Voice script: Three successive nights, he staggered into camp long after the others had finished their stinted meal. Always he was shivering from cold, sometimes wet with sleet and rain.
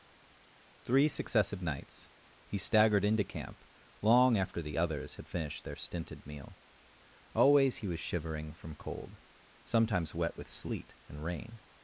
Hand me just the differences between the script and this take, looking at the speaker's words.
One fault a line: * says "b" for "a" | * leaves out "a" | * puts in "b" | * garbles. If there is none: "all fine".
all fine